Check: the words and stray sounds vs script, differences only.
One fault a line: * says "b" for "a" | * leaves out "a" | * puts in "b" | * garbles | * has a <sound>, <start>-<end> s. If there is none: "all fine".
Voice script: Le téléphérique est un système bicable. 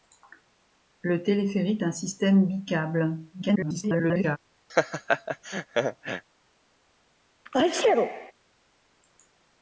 * leaves out "est"
* garbles
* has a laugh, 4.7-6.2 s
* has a sneeze, 7.5-8.3 s